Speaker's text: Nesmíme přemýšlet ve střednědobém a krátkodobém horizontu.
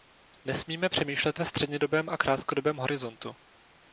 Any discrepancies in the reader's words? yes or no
no